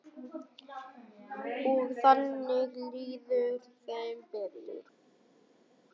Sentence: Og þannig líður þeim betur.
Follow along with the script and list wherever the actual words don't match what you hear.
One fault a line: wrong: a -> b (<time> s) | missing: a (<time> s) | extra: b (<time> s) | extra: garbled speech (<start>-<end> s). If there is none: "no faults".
no faults